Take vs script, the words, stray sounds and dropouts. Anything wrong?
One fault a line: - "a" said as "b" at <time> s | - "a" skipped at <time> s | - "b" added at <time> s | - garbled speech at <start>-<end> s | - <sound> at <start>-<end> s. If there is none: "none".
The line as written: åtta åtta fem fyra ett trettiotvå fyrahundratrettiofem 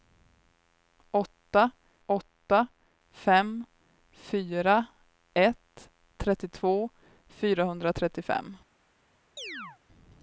- chirp at 9.4-9.8 s